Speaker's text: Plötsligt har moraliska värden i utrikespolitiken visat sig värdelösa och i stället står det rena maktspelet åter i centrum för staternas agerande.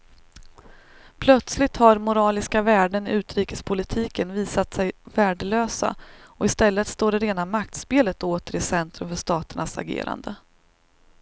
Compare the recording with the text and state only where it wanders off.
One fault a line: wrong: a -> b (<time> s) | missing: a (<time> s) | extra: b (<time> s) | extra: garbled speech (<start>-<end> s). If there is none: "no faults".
no faults